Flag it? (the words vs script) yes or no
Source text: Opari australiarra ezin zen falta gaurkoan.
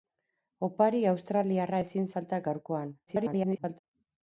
yes